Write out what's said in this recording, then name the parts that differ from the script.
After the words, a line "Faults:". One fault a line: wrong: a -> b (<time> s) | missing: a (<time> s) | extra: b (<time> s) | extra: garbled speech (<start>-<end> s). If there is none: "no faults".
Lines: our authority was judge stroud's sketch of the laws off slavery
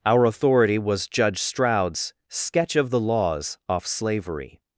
our authority was judge stroud's sketch of the laws off slavery
Faults:
no faults